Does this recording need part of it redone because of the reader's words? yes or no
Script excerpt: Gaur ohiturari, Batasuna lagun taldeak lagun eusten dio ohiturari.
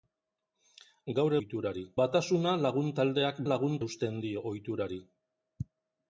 no